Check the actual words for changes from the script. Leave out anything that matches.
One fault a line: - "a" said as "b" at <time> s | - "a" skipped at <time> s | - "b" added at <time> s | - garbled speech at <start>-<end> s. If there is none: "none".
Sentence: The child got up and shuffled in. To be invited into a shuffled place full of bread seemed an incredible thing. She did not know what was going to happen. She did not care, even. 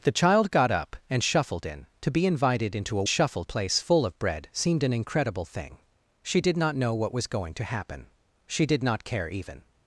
none